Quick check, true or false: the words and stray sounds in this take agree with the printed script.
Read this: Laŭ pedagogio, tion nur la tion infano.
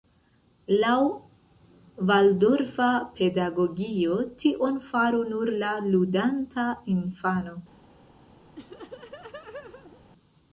false